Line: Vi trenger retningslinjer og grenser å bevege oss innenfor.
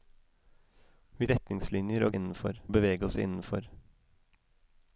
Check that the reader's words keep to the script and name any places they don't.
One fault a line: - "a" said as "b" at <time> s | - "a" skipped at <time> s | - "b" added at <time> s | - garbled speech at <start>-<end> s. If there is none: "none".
- "trenger" skipped at 1.3 s
- "grenser" said as "innenfor" at 2.2 s